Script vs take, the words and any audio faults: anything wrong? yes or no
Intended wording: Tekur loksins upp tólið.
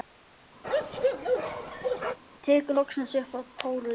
yes